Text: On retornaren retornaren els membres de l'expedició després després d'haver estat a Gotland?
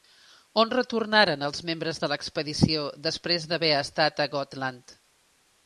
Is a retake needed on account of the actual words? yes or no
yes